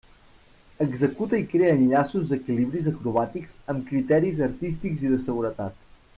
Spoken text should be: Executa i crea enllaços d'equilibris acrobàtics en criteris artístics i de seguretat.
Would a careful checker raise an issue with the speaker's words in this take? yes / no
yes